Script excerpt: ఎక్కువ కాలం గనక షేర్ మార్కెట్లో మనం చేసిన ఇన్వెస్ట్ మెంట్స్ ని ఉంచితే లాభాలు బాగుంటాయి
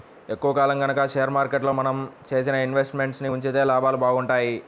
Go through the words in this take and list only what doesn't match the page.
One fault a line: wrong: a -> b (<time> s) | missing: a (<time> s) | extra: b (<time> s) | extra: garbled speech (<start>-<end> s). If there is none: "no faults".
no faults